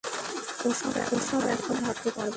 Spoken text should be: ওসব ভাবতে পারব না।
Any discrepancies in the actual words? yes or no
yes